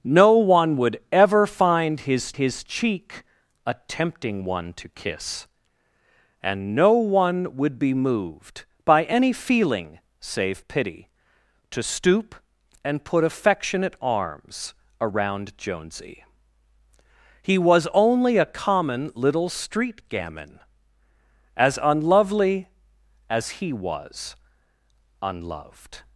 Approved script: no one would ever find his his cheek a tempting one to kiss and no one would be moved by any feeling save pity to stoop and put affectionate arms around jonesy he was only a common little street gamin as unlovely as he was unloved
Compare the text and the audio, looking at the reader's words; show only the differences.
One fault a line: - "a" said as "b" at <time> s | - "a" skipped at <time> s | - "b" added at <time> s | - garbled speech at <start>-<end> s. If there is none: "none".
none